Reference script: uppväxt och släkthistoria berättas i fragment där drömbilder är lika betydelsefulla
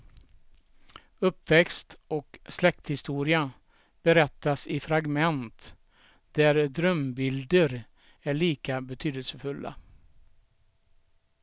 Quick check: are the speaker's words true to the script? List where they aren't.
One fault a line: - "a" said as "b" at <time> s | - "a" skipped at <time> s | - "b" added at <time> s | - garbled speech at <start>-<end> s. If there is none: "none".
none